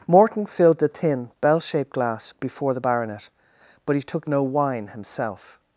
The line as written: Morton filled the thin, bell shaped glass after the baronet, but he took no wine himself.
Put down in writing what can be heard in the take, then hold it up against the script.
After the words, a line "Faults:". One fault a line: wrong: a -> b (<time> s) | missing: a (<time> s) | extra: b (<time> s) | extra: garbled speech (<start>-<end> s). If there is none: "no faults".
Morton filled the thin, bell shaped glass before the baronet, but he took no wine himself.
Faults:
wrong: after -> before (2.4 s)